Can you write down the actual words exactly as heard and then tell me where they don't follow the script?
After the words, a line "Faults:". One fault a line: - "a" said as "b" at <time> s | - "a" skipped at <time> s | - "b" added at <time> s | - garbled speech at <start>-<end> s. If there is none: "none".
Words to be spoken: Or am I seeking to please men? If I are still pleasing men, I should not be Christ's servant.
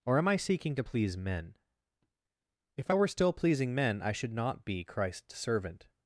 Or am I seeking to please men? If I were still pleasing men, I should not be Christ's servant.
Faults:
- "are" said as "were" at 2.9 s